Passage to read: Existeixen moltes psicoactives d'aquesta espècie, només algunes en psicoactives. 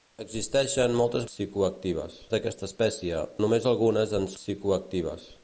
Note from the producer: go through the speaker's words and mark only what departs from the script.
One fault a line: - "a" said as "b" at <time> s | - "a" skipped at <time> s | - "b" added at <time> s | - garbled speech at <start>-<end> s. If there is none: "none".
none